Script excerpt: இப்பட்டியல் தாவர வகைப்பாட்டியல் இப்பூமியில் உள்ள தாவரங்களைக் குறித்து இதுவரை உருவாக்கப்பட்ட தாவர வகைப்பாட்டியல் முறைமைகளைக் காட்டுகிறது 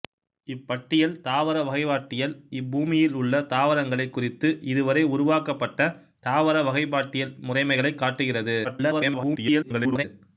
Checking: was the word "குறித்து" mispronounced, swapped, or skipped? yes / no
no